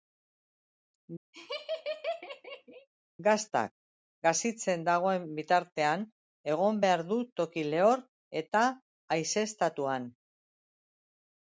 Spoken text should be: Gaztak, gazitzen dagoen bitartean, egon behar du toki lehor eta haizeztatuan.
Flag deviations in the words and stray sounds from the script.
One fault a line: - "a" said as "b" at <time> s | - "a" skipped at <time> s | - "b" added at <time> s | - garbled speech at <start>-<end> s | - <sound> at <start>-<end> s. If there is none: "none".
- laugh at 1.3-2.9 s